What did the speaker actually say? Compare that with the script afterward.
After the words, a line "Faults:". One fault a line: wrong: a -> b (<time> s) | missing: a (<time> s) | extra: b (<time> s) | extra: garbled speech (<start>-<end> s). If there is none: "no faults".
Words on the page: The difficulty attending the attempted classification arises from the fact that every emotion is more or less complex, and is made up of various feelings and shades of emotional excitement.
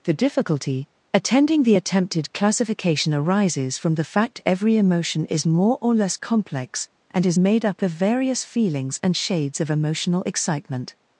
The difficulty attending the attempted classification arises from the fact every emotion is more or less complex, and is made up of various feelings and shades of emotional excitement.
Faults:
missing: that (4.4 s)